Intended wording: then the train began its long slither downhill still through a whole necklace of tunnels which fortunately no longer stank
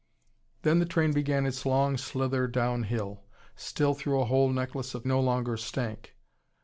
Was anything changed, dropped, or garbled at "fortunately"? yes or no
yes